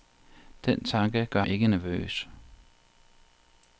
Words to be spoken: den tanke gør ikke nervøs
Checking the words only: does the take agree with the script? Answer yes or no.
yes